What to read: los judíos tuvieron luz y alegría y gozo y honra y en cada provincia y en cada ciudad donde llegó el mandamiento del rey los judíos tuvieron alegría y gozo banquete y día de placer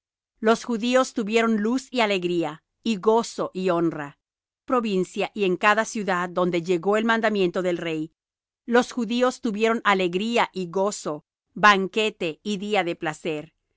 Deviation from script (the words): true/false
true